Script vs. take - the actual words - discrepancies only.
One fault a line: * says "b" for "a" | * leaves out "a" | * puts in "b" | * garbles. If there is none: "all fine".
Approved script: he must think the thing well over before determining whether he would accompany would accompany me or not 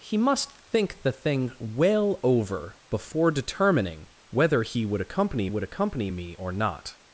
all fine